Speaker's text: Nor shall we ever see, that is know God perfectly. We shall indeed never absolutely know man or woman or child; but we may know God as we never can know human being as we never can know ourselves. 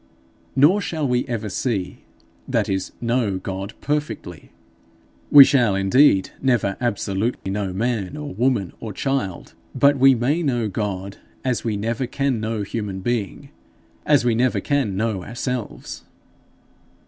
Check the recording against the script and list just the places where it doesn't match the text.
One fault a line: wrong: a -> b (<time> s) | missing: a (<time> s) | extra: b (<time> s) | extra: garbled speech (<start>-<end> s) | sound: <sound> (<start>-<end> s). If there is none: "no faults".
sound: dropout (7.4-7.5 s)